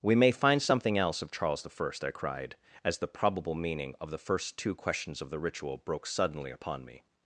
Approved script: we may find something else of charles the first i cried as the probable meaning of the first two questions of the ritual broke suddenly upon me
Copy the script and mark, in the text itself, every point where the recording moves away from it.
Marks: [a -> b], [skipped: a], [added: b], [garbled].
we may find something else of charles the first i cried as the probable meaning of the first two questions of the ritual broke suddenly upon me